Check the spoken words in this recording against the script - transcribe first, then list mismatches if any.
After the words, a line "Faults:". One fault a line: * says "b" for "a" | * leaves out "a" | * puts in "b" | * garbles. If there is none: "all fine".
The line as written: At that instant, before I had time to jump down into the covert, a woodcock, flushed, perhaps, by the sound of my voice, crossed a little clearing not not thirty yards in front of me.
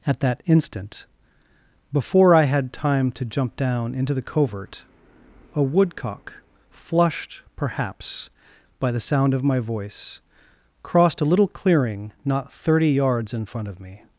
At that instant, before I had time to jump down into the covert, a woodcock, flushed, perhaps, by the sound of my voice, crossed a little clearing not thirty yards in front of me.
Faults:
* leaves out "not"